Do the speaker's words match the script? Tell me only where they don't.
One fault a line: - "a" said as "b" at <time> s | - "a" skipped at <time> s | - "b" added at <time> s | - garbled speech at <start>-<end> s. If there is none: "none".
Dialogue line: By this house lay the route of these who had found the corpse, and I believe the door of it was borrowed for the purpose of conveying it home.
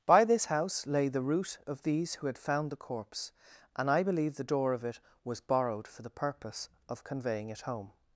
none